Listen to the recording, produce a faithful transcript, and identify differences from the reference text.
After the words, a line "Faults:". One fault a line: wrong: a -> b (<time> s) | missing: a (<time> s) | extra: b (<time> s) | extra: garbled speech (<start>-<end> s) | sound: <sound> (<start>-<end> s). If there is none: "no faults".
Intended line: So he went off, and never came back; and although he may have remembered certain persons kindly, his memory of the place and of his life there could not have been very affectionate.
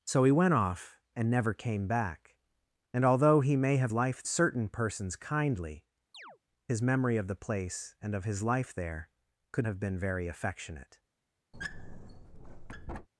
So he went off, and never came back; and although he may have life certain persons kindly, his memory of the place and of his life there could have been very affectionate.
Faults:
wrong: remembered -> life (3.9 s)
sound: chirp (6.1-6.4 s)
missing: not (9.7 s)
sound: squeak (11.5-13.1 s)